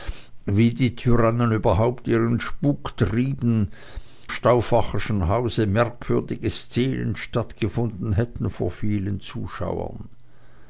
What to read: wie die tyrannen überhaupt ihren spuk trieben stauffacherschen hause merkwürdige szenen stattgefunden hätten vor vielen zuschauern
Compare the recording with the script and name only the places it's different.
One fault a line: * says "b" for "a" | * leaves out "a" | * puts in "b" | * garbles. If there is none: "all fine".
all fine